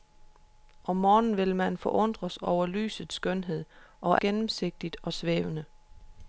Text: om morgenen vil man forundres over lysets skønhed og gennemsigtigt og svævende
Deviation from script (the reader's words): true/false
false